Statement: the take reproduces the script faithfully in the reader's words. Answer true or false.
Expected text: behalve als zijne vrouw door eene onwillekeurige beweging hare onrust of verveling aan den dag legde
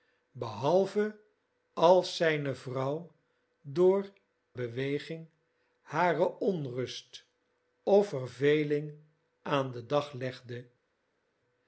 false